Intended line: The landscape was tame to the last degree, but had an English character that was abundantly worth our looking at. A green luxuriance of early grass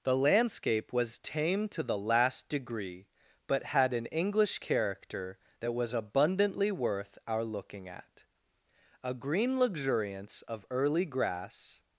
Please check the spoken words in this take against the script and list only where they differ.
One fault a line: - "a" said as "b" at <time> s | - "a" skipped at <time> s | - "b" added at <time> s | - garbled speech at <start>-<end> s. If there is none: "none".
none